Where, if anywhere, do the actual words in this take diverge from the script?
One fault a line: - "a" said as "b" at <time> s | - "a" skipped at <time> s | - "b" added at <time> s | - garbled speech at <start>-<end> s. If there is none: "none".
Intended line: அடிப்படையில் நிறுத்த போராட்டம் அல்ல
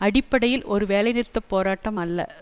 - "ஒரு வேலை" added at 0.7 s